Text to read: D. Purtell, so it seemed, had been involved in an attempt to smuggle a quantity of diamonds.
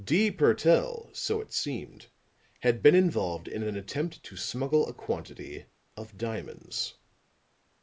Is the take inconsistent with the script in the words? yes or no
no